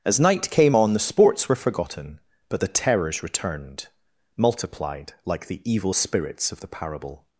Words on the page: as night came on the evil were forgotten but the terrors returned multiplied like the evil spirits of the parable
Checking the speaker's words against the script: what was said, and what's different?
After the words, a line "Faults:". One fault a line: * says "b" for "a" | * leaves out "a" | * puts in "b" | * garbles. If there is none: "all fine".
as night came on the sports were forgotten but the terrors returned multiplied like the evil spirits of the parable
Faults:
* says "sports" for "evil"